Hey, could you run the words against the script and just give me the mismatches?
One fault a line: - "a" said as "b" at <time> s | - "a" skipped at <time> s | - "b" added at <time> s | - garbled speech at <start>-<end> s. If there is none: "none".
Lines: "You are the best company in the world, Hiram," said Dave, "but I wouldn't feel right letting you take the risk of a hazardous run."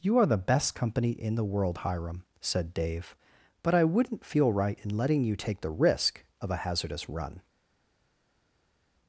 - "in" added at 4.8 s